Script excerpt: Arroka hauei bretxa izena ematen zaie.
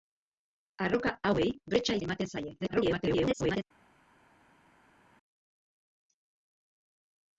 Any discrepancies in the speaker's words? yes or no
yes